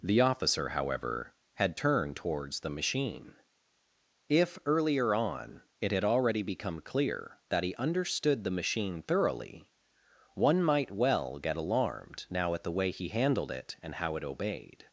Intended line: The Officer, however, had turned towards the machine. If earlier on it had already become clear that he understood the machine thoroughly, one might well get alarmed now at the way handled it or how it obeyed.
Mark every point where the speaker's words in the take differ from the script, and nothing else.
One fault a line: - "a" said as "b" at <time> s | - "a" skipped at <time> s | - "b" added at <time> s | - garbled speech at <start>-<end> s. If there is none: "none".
- "he" added at 12.9 s
- "or" said as "and" at 13.8 s